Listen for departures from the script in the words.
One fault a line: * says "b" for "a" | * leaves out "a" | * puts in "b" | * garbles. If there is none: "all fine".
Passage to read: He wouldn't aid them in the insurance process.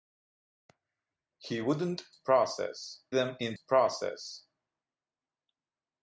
* says "process" for "aid"
* leaves out "the insurance"